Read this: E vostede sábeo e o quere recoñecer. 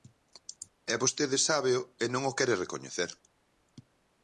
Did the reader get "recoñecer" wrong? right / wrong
right